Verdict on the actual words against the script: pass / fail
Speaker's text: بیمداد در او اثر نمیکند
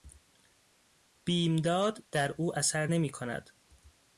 pass